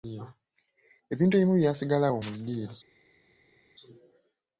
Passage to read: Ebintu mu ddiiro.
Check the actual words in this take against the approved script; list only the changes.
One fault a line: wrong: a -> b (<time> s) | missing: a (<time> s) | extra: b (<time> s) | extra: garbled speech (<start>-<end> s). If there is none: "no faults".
extra: ebimu byasigala awo (1.4 s)